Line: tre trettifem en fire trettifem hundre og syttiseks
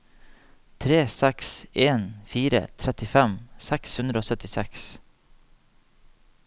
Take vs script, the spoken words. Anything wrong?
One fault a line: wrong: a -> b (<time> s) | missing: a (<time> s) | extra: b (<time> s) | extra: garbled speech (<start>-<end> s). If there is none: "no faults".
wrong: trettifem -> seks (1.1 s)
extra: seks (3.7 s)